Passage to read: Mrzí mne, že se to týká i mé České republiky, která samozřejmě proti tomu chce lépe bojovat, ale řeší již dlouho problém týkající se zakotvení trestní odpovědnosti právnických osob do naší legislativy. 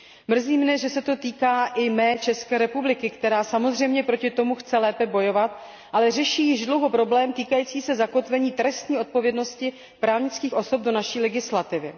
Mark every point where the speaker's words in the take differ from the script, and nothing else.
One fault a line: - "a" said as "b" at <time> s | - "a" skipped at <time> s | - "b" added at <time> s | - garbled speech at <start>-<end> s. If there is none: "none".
none